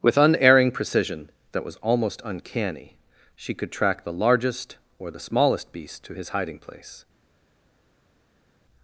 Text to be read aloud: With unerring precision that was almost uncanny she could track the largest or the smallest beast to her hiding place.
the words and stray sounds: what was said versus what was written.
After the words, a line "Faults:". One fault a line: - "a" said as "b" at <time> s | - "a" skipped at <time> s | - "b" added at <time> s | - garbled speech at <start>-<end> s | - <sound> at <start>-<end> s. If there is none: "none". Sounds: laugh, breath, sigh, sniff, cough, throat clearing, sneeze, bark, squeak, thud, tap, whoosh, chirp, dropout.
With unerring precision that was almost uncanny she could track the largest or the smallest beast to his hiding place.
Faults:
- "her" said as "his" at 6.1 s